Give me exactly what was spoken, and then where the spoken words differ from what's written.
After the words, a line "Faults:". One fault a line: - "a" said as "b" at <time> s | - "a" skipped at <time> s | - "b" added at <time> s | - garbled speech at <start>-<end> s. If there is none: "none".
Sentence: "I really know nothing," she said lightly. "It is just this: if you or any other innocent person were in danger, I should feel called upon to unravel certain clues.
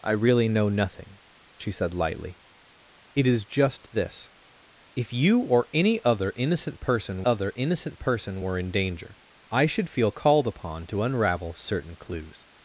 "I really know nothing," she said lightly. "It is just this: if you or any other innocent person other innocent person were in danger, I should feel called upon to unravel certain clues.
Faults:
- "other innocent person" added at 7.2 s